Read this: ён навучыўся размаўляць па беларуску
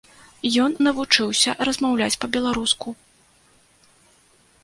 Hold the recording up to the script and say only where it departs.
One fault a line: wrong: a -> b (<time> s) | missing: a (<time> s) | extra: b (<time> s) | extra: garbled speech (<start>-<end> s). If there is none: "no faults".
no faults